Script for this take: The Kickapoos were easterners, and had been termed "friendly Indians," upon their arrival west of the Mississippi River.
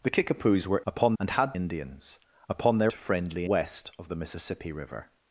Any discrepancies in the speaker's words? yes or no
yes